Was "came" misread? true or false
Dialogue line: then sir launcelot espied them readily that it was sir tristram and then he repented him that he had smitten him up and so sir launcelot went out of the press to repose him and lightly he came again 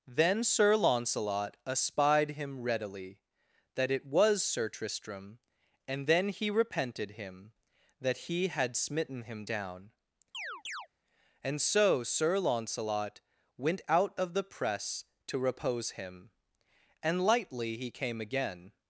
false